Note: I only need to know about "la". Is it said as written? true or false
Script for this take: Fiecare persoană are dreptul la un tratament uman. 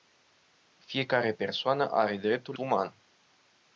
false